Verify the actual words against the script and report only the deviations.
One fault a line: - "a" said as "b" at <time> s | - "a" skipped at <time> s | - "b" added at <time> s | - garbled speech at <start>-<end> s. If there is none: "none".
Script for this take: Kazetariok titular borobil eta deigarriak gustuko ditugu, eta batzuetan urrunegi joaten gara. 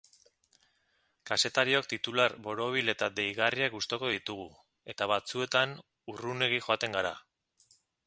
none